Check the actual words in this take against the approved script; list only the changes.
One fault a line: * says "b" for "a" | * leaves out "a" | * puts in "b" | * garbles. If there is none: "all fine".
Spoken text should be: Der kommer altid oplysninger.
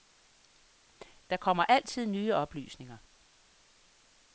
* puts in "nye"